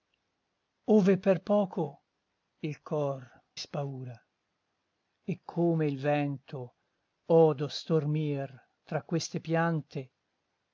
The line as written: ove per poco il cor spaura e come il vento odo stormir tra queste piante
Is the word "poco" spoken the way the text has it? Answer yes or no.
yes